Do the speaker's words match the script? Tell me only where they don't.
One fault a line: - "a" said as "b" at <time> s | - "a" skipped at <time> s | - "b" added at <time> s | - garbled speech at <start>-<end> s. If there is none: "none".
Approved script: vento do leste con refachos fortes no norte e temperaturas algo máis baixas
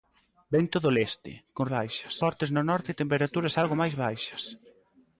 - "refachos" said as "baixas" at 1.8 s